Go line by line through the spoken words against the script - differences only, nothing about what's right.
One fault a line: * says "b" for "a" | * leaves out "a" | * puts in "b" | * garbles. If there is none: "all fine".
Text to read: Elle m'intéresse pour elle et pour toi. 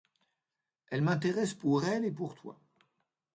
all fine